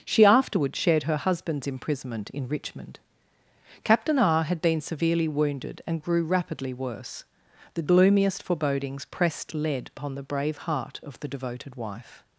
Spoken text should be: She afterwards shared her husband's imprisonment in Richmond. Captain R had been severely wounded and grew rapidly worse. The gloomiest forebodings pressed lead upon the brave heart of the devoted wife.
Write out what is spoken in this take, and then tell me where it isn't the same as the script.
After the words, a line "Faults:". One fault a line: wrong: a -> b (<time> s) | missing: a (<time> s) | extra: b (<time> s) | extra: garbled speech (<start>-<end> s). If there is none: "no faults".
She afterwards shared her husband's imprisonment in Richmond. Captain R had been severely wounded and grew rapidly worse. The gloomiest forebodings pressed lead upon the brave heart of the devoted wife.
Faults:
no faults